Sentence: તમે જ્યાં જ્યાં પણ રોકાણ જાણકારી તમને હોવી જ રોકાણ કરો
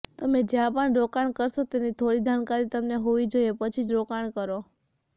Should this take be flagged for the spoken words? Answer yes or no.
yes